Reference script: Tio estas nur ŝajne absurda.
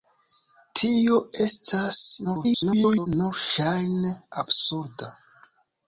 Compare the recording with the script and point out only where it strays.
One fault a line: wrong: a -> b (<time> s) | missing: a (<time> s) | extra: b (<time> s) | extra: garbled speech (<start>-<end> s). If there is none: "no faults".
extra: garbled speech (2.2-3.1 s)